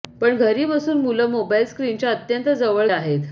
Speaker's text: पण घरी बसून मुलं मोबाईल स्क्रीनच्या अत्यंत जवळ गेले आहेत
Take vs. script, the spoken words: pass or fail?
fail